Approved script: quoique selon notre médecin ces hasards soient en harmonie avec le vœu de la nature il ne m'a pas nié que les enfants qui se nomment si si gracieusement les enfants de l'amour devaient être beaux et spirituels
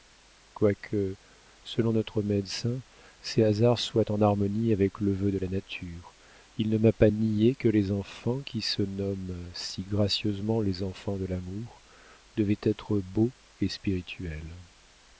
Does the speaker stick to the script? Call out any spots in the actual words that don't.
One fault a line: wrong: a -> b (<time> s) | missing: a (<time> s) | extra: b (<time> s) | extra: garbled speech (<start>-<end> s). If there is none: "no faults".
missing: si (9.8 s)